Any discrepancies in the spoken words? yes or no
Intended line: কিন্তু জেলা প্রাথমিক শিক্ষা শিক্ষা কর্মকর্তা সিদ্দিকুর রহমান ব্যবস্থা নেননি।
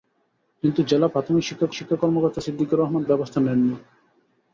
no